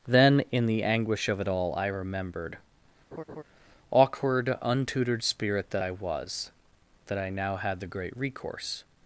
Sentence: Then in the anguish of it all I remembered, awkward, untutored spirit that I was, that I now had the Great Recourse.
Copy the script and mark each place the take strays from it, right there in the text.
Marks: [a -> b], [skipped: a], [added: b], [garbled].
Then in the anguish of it all I remembered, awkward, untutored spirit that I was, that I now had the Great Recourse.